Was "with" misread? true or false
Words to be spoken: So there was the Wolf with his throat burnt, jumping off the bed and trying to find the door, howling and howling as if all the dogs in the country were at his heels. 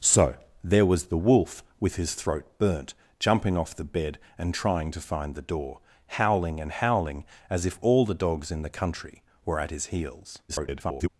false